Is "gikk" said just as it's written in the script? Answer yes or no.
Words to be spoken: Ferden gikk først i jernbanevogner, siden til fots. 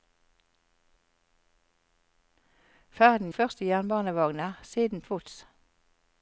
no